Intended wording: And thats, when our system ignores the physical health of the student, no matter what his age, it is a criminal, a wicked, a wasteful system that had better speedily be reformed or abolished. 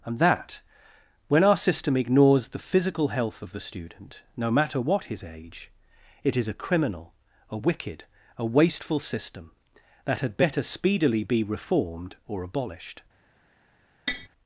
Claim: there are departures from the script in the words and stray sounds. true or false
true